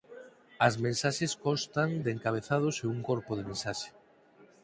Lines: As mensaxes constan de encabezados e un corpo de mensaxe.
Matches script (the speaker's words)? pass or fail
pass